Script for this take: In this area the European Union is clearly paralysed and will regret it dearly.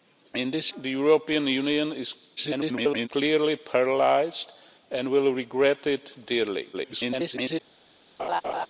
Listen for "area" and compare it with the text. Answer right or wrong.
wrong